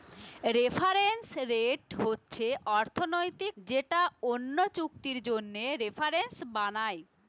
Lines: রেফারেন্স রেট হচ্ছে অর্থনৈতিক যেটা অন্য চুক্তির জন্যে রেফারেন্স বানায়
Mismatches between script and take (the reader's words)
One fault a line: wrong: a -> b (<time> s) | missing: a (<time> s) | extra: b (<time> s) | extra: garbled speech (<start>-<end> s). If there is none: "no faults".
no faults